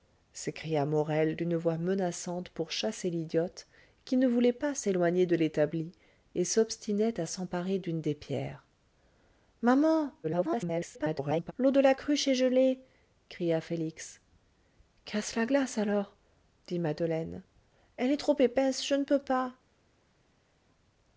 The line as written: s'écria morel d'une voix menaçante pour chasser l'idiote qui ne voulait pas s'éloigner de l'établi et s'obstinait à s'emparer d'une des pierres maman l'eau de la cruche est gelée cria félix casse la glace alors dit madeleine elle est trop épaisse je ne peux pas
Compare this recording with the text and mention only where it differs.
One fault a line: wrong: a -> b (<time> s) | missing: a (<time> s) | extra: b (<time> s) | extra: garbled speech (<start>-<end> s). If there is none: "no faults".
extra: garbled speech (10.2-11.5 s)